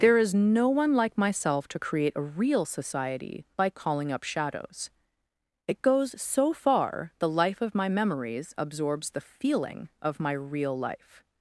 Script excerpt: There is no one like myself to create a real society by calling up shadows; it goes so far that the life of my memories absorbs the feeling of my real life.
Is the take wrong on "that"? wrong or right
wrong